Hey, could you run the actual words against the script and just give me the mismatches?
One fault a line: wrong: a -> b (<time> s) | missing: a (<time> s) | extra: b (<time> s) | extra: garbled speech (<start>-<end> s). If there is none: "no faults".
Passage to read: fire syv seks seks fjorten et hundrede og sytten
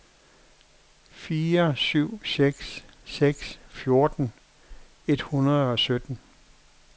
no faults